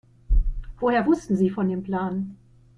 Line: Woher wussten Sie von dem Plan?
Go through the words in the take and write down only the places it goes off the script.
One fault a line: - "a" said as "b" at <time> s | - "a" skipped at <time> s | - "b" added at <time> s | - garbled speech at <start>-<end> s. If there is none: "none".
none